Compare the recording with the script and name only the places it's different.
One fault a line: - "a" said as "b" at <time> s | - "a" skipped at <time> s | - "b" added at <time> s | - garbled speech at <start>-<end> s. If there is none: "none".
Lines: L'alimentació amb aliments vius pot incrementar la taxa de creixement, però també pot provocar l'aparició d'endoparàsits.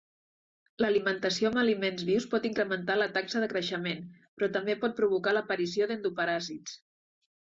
none